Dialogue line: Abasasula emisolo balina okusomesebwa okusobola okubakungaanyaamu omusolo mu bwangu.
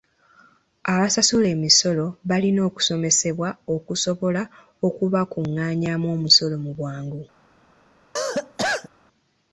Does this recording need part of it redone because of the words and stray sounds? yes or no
yes